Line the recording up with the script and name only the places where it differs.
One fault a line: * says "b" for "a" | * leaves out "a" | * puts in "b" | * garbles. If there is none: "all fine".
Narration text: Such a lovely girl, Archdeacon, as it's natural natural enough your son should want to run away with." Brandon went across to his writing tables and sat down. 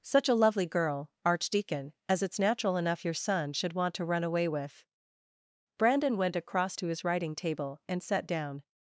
* leaves out "natural"
* says "table" for "tables"